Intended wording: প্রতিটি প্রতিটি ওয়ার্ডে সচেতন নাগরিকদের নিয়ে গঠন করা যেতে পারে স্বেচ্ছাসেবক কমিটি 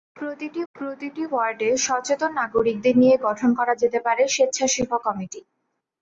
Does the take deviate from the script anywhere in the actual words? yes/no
no